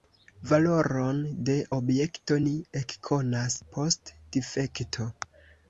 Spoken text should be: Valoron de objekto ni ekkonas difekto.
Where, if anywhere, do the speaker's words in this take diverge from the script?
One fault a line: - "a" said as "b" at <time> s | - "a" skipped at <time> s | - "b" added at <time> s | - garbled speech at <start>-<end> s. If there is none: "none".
- "post" added at 3.8 s